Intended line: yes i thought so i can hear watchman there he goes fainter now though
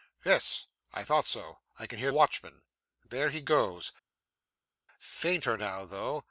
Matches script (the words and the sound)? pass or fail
pass